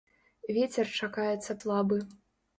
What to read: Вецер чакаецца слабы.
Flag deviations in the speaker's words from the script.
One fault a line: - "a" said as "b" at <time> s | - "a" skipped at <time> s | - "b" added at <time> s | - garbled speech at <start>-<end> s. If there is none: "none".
none